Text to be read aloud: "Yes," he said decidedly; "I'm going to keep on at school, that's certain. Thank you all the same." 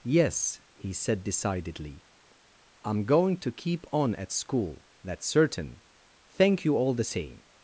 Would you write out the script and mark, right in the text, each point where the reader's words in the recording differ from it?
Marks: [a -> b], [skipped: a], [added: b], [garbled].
"Yes," he said decidedly; "I'm going to keep on at school, that's certain. Thank you all the same."